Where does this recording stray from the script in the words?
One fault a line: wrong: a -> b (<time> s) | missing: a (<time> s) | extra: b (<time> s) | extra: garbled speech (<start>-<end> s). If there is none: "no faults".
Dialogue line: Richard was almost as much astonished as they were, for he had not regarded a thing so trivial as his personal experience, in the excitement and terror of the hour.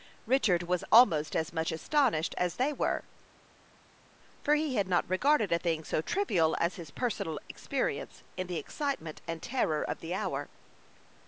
no faults